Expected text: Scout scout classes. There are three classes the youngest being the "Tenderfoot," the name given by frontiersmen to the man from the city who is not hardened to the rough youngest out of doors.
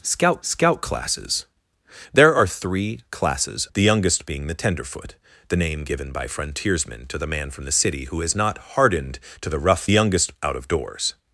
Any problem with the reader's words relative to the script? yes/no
no